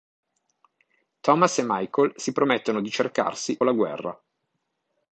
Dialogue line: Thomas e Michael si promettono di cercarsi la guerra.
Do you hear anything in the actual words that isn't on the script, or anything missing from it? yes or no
no